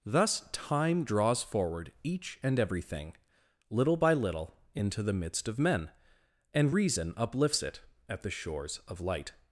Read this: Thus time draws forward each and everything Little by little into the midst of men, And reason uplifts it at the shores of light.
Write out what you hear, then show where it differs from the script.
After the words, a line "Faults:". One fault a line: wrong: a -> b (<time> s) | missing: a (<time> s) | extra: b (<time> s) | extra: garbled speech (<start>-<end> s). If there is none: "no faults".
Thus time draws forward each and everything Little by little into the midst of men, And reason uplifts it at the shores of light.
Faults:
no faults